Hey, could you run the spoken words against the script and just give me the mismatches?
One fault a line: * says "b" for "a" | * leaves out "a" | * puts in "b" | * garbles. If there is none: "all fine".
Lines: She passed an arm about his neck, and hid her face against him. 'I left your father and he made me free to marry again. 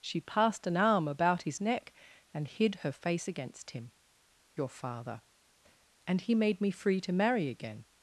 * leaves out "I left"